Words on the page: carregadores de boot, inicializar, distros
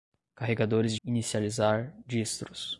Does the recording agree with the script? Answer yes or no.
no